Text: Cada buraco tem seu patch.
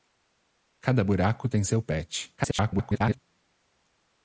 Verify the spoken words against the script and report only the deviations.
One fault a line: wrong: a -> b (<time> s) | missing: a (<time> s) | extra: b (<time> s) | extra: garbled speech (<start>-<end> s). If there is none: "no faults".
extra: garbled speech (2.4-3.2 s)